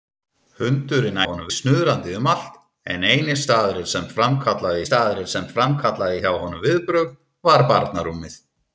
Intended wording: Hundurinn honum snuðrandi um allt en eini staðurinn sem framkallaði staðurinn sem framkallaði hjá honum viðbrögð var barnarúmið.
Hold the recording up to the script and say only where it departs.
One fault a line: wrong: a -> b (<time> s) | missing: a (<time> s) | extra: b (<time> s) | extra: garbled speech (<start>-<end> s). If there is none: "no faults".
no faults